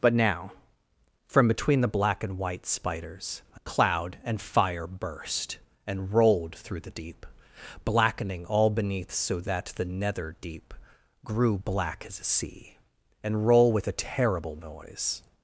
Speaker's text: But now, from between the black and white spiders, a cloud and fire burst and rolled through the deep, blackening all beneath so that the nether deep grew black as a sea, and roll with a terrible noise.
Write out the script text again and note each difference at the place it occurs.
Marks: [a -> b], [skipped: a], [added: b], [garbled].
But now, from between the black and white spiders, a cloud and fire burst and rolled through the deep, blackening all beneath so that the nether deep grew black as a sea, and roll with a terrible noise.